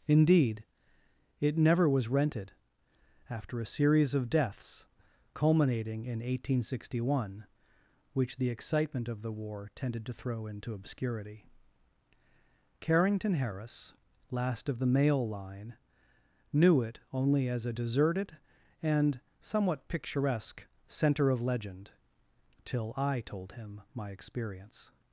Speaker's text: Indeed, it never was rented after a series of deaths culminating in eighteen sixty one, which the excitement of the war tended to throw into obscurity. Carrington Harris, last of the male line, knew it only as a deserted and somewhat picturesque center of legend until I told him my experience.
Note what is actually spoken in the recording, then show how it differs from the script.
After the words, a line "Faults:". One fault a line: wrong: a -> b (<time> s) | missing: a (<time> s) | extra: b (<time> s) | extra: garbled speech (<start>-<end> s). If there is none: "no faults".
Indeed, it never was rented after a series of deaths culminating in eighteen sixty one, which the excitement of the war tended to throw into obscurity. Carrington Harris, last of the male line, knew it only as a deserted and somewhat picturesque center of legend till I told him my experience.
Faults:
wrong: until -> till (22.6 s)